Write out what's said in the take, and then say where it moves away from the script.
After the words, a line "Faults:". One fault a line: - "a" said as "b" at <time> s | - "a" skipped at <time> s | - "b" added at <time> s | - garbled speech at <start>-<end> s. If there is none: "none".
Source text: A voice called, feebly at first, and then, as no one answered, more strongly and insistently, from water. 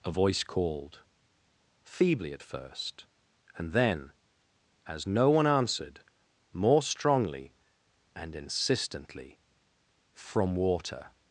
A voice called, feebly at first, and then, as no one answered, more strongly and insistently, from water.
Faults:
none